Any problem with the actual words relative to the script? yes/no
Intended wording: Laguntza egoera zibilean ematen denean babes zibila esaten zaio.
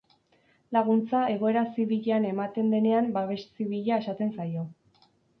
no